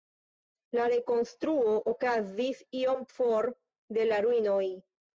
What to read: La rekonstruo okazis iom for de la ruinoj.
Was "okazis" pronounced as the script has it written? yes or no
yes